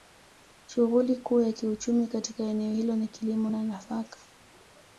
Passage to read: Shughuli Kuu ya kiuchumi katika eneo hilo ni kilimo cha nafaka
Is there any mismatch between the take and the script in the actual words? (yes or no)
no